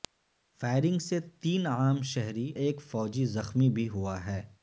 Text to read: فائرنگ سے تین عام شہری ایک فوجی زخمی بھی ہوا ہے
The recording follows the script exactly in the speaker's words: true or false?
true